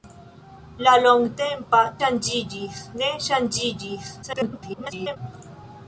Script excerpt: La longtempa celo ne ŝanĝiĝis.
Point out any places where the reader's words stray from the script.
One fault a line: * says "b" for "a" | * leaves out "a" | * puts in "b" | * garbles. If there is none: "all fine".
* says "ŝanĝiĝis" for "celo"
* garbles